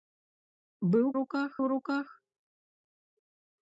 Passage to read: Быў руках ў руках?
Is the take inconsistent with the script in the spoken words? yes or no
no